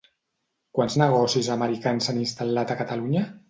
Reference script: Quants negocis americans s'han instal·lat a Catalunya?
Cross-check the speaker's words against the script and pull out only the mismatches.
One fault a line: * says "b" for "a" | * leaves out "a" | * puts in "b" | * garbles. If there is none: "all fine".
all fine